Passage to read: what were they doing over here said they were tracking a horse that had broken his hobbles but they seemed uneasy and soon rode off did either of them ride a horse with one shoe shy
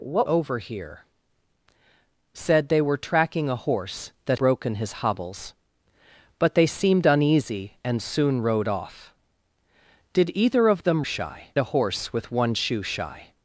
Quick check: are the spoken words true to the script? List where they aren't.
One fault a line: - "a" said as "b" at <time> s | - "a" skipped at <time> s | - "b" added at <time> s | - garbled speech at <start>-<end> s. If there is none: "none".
- "were they doing" skipped at 0.3 s
- "had" skipped at 4.4 s
- "ride" said as "shy" at 11.0 s